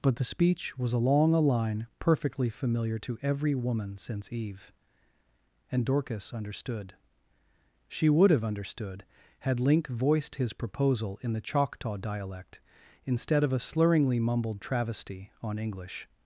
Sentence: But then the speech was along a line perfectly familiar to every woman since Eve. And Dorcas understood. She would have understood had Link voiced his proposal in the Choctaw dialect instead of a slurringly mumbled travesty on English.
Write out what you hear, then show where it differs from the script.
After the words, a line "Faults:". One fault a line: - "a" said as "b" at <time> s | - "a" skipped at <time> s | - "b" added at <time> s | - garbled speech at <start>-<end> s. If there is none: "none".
But the speech was along a line perfectly familiar to every woman since Eve. And Dorcas understood. She would have understood had Link voiced his proposal in the Choctaw dialect instead of a slurringly mumbled travesty on English.
Faults:
- "then" skipped at 0.1 s